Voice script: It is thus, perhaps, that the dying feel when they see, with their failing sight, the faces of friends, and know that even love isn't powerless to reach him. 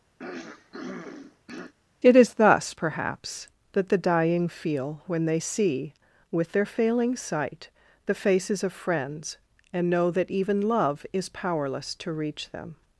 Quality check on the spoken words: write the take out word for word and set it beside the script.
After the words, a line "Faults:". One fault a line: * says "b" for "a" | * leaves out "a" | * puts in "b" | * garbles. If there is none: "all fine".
It is thus, perhaps, that the dying feel when they see, with their failing sight, the faces of friends, and know that even love is powerless to reach them.
Faults:
* says "is" for "isn't"
* says "them" for "him"